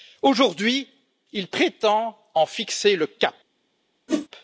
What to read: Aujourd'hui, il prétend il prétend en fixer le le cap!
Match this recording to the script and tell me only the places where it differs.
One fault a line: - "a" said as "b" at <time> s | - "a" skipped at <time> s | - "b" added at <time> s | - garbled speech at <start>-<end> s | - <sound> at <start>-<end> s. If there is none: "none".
- "il prétend" skipped at 2.2 s
- "le" skipped at 3.1 s
- whoosh at 4.1-4.3 s